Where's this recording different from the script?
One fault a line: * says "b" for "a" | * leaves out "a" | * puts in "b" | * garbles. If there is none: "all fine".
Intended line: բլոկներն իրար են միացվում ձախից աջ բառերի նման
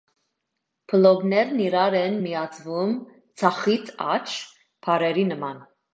all fine